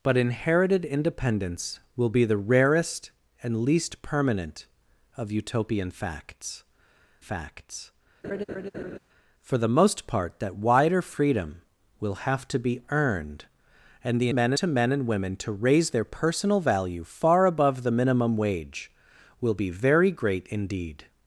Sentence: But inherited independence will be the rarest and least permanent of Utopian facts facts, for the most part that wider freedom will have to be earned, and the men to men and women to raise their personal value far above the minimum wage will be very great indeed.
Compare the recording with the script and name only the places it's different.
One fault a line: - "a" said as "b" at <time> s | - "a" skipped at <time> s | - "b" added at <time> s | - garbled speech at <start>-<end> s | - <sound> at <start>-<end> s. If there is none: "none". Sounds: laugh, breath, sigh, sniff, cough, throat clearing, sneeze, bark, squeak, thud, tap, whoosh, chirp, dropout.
- laugh at 8.2-9.0 s